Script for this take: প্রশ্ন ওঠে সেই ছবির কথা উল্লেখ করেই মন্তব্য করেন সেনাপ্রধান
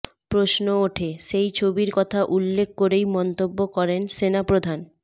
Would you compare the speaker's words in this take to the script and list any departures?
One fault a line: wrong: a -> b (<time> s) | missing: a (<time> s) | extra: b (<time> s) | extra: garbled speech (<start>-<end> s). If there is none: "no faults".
no faults